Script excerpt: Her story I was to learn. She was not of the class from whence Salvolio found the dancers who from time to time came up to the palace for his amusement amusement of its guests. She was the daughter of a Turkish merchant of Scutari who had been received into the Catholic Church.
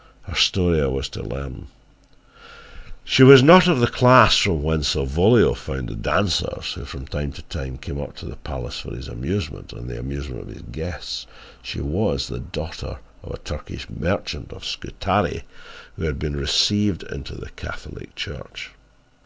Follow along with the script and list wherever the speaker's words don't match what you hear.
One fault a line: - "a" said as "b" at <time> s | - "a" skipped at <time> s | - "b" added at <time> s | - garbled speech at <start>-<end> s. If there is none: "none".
- "and the" added at 9.7 s
- "its" said as "his" at 10.5 s